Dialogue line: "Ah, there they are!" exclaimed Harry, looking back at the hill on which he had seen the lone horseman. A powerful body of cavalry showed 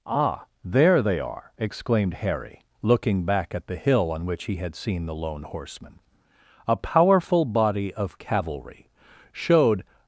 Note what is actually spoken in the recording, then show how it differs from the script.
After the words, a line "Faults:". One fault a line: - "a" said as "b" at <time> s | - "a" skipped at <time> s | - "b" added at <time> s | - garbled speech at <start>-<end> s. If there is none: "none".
"Ah, there they are!" exclaimed Harry, looking back at the hill on which he had seen the lone horseman. A powerful body of cavalry showed
Faults:
none